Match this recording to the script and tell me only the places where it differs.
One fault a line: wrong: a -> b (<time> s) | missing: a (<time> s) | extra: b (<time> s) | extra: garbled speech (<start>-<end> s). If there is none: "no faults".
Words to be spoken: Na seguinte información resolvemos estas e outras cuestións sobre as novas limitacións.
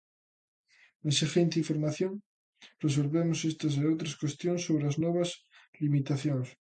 no faults